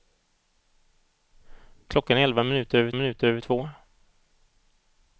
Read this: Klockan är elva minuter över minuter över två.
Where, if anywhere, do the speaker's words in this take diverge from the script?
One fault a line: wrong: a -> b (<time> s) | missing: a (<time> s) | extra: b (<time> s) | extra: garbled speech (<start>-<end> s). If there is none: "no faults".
no faults